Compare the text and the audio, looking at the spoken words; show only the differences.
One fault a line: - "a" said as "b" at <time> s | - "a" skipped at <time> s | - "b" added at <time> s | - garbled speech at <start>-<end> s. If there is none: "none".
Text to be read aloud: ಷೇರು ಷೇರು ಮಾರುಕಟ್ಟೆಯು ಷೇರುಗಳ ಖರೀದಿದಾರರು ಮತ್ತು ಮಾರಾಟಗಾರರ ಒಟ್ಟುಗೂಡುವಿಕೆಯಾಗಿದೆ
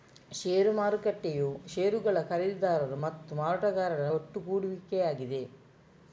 - "ಷೇರು" skipped at 0.7 s